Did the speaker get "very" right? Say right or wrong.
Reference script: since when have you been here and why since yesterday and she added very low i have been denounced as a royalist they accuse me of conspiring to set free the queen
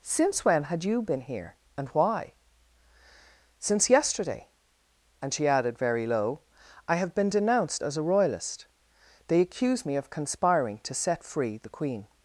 right